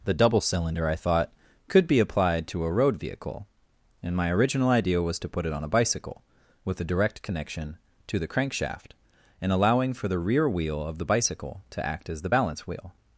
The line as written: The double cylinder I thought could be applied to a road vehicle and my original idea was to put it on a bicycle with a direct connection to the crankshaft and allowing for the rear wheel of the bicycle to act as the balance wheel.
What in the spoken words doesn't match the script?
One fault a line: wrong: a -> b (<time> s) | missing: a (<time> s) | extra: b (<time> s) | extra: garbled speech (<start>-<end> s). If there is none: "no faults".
no faults